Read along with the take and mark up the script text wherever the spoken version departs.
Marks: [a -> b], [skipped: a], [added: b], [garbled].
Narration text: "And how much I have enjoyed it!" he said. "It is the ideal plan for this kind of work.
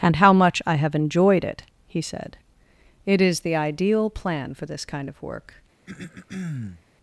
"And how much I have enjoyed it!" he said. "It is the ideal plan for this kind of work.